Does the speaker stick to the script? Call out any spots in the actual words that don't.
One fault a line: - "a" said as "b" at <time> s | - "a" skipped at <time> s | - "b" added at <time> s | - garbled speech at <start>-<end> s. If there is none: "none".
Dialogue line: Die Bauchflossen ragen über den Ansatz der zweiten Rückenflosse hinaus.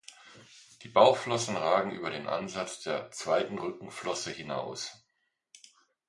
none